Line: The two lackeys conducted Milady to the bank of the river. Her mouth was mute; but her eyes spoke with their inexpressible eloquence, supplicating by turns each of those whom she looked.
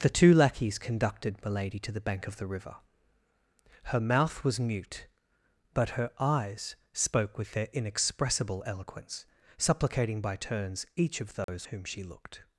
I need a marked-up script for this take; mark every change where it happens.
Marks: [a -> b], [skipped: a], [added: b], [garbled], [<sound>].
The two lackeys conducted Milady to the bank of the river. Her mouth was mute; but her eyes spoke with their inexpressible eloquence, supplicating by turns each of those [dropout] whom she looked.